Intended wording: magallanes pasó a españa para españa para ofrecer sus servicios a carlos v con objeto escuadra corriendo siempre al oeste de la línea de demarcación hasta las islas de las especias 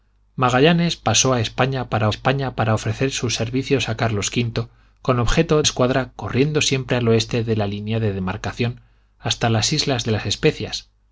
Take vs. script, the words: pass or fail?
pass